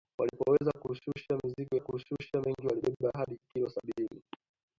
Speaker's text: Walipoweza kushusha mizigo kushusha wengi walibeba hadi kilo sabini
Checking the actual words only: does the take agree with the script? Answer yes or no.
yes